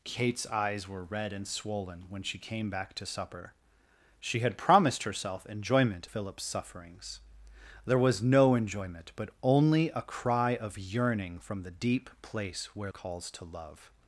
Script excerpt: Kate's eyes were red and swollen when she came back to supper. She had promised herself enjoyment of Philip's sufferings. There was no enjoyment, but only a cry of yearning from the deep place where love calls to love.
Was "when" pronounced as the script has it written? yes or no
yes